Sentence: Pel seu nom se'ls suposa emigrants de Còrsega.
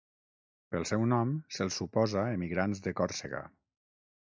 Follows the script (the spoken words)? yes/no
yes